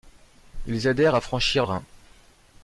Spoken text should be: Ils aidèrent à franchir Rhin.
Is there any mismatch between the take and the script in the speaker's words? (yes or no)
no